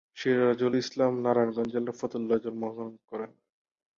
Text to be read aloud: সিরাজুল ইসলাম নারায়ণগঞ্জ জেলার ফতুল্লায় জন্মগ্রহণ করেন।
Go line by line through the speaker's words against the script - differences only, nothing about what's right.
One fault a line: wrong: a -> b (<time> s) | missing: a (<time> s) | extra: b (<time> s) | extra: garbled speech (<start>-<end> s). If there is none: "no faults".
no faults